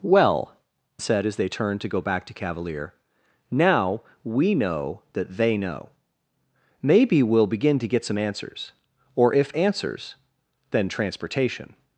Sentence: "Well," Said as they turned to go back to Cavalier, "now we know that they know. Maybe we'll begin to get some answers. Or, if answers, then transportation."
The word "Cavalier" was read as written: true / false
true